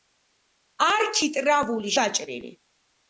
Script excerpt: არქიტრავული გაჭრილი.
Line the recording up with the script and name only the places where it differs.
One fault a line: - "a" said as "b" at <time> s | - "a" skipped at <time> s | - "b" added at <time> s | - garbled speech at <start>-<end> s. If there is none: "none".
none